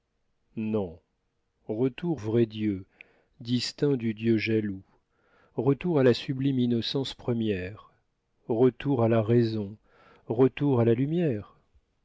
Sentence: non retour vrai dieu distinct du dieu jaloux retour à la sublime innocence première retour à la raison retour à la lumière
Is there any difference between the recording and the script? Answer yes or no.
no